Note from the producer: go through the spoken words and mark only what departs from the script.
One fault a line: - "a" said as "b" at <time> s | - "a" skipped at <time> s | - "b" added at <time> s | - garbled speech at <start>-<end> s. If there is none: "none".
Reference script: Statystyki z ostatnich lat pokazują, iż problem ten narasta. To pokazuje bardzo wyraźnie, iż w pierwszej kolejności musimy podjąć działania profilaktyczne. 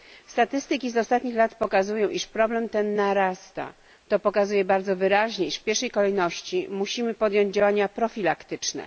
none